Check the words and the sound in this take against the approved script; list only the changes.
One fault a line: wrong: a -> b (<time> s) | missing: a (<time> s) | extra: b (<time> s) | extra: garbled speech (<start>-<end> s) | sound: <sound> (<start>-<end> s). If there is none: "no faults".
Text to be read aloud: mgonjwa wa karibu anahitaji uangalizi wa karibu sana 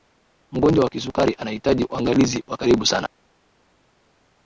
wrong: karibu -> kisukari (0.9 s)